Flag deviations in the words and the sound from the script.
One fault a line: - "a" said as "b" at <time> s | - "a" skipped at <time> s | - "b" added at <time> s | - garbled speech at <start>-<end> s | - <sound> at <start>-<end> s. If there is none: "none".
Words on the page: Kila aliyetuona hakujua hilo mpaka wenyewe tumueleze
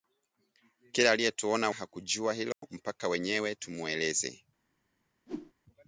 - dropout at 2.5-2.6 s
- whoosh at 5.3-5.5 s